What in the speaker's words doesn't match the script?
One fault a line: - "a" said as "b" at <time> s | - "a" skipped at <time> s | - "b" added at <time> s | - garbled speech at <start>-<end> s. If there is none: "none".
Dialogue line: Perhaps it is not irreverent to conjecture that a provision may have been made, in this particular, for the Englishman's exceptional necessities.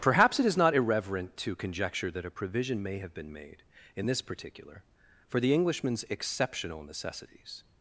none